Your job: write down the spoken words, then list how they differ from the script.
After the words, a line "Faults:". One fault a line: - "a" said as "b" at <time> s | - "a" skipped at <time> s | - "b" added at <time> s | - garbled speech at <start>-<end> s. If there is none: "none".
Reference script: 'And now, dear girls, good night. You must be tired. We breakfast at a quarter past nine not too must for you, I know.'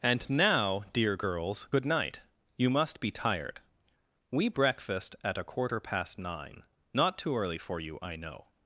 'And now, dear girls, good night. You must be tired. We breakfast at a quarter past nine not too early for you, I know.'
Faults:
- "must" said as "early" at 7.4 s